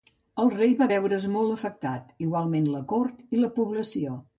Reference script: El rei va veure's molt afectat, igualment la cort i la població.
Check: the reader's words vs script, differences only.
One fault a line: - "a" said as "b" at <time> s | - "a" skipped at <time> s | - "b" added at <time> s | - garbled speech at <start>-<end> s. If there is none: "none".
none